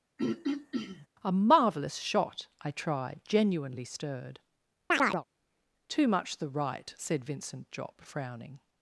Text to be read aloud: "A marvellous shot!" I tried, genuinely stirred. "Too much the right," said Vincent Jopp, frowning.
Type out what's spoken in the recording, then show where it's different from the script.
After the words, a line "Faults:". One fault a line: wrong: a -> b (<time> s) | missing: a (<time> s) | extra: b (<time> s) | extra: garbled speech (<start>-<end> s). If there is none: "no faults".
"A marvellous shot!" I tried, genuinely stirred. "Too much the right," said Vincent Jopp, frowning.
Faults:
no faults